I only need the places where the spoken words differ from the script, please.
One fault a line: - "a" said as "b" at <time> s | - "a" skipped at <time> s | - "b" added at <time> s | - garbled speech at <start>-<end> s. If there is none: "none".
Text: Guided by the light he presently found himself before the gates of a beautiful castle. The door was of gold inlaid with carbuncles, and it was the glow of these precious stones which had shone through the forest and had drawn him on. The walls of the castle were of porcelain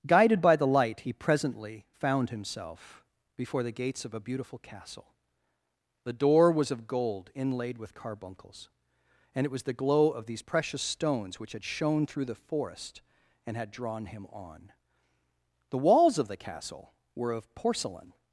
none